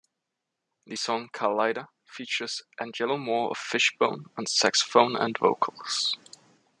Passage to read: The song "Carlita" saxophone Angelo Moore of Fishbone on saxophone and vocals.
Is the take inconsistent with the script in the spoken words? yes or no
yes